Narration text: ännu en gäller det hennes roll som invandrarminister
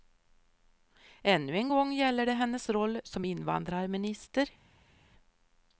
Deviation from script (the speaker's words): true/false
true